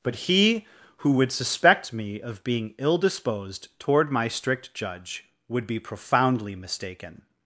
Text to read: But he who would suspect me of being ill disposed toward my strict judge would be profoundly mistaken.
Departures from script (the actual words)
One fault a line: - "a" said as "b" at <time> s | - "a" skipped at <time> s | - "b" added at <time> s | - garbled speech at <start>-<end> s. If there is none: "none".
none